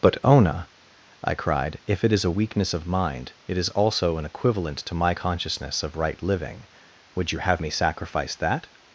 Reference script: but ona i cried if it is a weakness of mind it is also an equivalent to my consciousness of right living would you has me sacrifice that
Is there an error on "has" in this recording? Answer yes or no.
yes